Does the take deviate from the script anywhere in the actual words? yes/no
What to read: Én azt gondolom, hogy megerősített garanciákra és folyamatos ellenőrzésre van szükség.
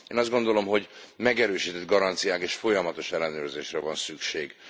no